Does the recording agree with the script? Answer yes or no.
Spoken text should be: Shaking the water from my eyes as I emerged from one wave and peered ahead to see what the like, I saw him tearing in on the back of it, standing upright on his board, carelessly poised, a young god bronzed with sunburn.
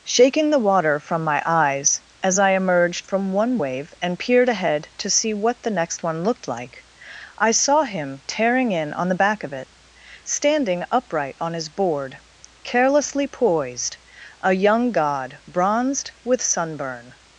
no